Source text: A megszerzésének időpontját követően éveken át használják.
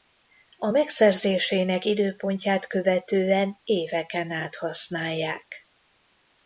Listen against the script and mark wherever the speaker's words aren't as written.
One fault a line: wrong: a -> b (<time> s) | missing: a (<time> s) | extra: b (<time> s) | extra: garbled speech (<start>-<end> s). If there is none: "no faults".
no faults